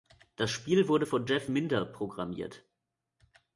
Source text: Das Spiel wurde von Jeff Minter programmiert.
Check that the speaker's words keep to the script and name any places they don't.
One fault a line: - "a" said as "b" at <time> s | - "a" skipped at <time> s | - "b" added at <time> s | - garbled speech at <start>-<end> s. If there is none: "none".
none